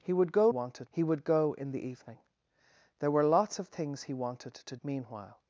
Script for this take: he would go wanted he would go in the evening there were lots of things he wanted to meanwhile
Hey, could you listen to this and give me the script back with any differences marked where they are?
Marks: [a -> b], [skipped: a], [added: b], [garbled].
he would go wanted he would go in the evening there were lots of things he wanted to meanwhile